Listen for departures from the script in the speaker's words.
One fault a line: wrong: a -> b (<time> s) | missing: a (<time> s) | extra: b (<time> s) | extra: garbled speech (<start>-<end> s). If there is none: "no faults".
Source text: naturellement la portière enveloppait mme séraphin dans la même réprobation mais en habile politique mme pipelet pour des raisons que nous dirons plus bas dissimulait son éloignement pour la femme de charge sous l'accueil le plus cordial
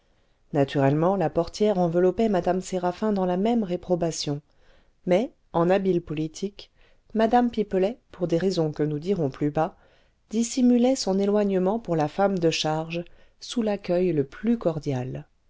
no faults